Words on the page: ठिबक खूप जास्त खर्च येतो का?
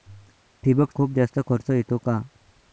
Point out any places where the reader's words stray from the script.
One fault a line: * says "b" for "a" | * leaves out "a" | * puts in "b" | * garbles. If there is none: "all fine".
all fine